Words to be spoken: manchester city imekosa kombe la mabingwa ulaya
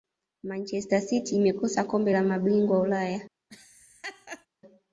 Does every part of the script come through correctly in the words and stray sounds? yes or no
no